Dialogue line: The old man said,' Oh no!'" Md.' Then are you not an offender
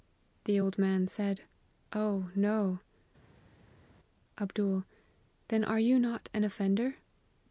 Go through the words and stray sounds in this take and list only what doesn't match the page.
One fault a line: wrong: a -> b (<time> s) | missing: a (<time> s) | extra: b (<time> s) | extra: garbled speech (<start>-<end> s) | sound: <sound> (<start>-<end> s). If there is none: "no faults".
no faults